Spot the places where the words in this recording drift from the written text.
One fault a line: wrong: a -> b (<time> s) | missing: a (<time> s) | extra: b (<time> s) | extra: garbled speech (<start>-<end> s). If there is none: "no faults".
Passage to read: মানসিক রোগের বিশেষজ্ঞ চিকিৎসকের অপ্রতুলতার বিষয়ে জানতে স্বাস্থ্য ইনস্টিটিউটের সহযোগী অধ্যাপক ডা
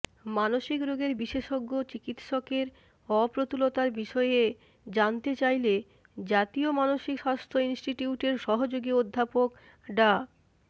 extra: চাইলে জাতীয় মানসিক (5.3 s)